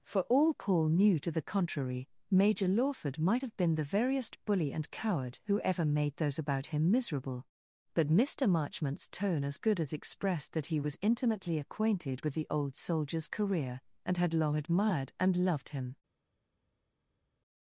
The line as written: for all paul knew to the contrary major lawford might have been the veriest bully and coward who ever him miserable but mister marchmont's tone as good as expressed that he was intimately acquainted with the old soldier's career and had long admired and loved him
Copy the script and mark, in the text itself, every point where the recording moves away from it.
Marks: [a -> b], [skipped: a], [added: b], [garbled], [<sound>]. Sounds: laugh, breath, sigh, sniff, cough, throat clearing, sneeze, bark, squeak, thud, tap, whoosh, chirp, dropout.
for all paul knew to the contrary major lawford might have been the veriest bully and coward who ever [added: made those about] him miserable but mister marchmont's tone as good as expressed that he was intimately acquainted with the old soldier's career and had long admired and loved him